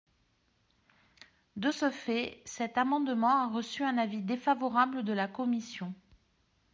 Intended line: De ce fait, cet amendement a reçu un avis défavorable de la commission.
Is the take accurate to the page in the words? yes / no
yes